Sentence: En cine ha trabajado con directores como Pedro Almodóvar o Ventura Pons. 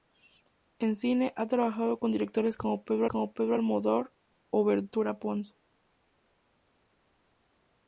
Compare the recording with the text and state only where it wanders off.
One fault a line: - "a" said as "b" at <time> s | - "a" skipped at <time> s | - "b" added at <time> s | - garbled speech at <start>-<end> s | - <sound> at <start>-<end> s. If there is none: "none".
- "como Pedro" added at 3.1 s